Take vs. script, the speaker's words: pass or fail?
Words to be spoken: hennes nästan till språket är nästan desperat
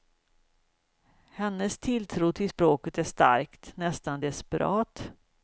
fail